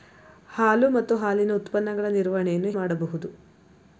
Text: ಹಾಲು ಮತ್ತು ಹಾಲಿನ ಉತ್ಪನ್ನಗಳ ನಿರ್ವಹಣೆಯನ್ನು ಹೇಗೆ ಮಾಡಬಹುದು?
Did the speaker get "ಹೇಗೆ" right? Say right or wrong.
wrong